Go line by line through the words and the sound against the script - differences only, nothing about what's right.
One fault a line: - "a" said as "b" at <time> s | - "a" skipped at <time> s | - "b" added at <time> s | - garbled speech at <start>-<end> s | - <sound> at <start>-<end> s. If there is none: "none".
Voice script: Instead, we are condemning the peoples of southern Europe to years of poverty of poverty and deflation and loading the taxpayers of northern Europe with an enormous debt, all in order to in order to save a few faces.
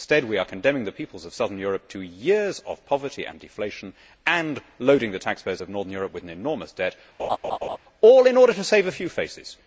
- "of poverty" skipped at 3.2 s
- laugh at 7.2-7.8 s
- "in order to" skipped at 8.6 s